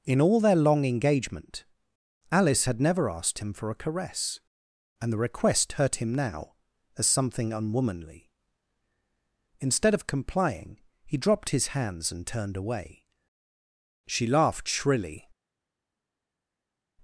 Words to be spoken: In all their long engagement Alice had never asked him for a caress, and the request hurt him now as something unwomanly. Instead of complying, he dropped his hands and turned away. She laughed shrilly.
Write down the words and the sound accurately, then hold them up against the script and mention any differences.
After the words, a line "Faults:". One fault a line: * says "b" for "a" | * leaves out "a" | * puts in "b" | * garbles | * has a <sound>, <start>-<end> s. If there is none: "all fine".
In all their long engagement Alice had never asked him for a caress, and the request hurt him now as something unwomanly. Instead of complying, he dropped his hands and turned away. She laughed shrilly.
Faults:
all fine